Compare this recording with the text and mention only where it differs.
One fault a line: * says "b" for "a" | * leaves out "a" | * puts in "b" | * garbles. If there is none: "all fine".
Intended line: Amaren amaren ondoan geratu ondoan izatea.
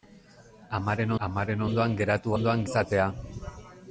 all fine